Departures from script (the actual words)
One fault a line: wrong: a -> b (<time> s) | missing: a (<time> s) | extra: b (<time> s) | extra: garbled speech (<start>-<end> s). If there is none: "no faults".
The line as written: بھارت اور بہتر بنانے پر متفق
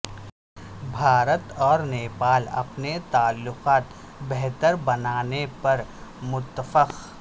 extra: نیپال اپنے تعلقات (1.8 s)